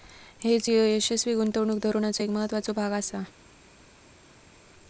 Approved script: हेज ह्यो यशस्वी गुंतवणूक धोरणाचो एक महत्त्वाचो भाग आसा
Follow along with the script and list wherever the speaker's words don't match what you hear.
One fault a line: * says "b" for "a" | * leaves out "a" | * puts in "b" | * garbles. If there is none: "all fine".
all fine